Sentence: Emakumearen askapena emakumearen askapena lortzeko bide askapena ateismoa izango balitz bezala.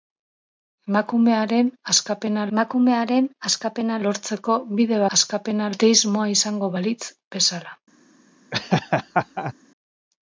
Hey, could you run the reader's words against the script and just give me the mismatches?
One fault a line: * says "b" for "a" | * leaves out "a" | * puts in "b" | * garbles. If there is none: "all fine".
all fine